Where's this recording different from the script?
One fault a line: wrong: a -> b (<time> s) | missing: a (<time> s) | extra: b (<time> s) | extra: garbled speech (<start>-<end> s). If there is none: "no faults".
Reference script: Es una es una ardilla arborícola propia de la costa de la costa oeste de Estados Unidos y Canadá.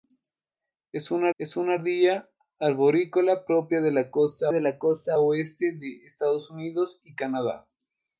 no faults